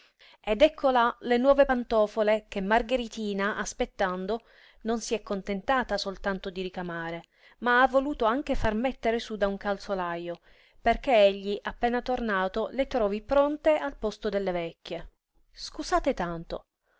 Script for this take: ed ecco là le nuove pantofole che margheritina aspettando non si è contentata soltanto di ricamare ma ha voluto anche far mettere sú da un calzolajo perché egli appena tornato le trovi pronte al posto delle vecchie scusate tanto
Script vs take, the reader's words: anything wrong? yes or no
no